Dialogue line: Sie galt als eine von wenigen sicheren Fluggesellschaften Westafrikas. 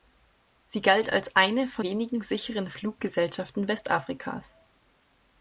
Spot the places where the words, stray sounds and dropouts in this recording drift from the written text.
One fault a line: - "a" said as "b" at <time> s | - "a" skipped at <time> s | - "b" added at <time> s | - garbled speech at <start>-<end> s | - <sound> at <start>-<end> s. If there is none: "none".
none